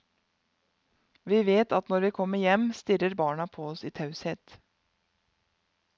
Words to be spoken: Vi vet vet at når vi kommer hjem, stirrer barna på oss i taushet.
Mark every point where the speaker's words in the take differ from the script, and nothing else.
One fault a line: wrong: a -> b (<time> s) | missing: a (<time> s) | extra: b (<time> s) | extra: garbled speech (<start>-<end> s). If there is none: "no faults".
missing: vet (1.7 s)